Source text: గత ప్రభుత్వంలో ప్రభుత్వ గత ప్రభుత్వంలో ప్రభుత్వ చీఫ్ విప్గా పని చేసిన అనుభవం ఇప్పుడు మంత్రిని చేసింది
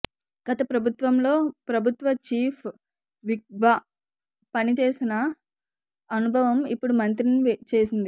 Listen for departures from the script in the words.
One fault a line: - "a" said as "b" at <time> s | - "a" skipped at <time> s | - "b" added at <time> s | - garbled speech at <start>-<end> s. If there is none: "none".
- "గత ప్రభుత్వంలో ప్రభుత్వ" skipped at 2.1 s